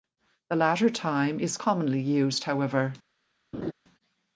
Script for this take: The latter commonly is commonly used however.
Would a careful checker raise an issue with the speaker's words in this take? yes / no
yes